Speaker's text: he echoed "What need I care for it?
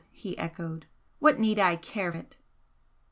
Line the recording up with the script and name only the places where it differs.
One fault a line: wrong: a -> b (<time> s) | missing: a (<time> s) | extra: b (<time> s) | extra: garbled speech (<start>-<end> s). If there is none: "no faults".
missing: for (2.1 s)